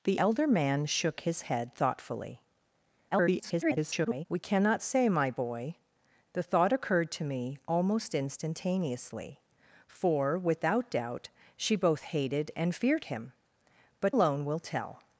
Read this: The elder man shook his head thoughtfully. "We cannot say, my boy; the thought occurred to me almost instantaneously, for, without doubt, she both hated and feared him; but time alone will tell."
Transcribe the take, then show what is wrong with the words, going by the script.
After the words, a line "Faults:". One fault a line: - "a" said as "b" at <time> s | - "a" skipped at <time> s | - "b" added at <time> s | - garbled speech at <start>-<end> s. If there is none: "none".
The elder man shook his head thoughtfully. [garbled] "We cannot say, my boy; the thought occurred to me almost instantaneously, for, without doubt, she both hated and feared him; but alone will tell."
Faults:
- garbled speech at 3.1-4.3 s
- "time" skipped at 14.1 s